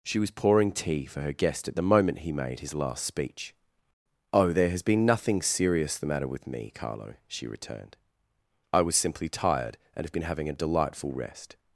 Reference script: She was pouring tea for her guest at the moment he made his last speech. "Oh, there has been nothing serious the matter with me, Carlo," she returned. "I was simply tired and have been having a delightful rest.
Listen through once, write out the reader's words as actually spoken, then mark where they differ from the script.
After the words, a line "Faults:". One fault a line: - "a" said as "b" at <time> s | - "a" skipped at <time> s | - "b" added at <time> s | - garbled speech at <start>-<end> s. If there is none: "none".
She was pouring tea for her guest at the moment he made his last speech. "Oh, there has been nothing serious the matter with me, Carlo," she returned. "I was simply tired and have been having a delightful rest.
Faults:
none